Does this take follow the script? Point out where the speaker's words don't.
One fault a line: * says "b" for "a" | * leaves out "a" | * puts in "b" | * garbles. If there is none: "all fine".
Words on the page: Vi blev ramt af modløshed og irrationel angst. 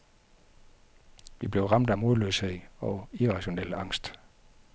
all fine